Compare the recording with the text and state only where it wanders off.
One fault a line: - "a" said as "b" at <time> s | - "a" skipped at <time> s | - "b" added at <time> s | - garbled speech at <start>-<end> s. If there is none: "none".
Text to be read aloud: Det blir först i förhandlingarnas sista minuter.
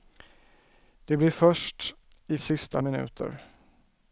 - "förhandlingarnas" skipped at 2.4 s